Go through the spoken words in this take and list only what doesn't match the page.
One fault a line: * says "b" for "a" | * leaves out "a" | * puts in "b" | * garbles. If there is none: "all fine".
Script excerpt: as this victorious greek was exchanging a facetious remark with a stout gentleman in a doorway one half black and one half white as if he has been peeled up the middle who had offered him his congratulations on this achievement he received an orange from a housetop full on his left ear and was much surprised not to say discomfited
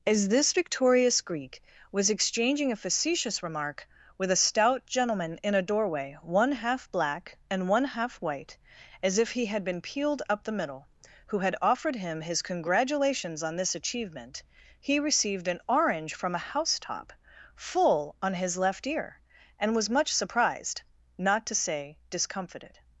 * says "had" for "has"